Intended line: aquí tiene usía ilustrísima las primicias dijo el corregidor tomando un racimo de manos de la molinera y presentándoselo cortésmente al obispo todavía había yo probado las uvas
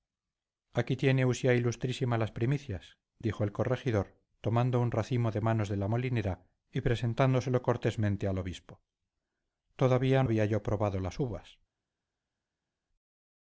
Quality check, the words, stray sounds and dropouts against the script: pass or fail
pass